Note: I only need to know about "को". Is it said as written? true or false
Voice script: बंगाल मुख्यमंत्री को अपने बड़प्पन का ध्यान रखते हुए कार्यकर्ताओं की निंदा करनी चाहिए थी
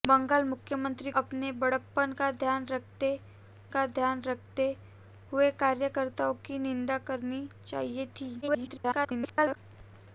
false